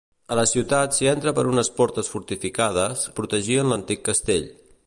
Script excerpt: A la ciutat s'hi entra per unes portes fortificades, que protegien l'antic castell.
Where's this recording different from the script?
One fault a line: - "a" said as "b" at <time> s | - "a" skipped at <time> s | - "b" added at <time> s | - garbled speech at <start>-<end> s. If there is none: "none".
- "que" skipped at 3.0 s